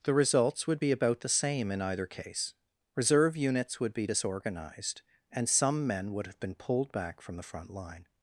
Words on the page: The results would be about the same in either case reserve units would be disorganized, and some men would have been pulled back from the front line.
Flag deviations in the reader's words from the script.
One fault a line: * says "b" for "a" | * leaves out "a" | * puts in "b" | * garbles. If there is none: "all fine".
all fine